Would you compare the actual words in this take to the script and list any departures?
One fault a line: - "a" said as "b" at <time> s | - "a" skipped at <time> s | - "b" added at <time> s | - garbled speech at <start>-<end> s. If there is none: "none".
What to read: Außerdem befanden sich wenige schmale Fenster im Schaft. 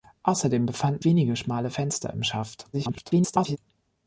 - "sich" skipped at 1.1 s
- garbled speech at 2.7-3.6 s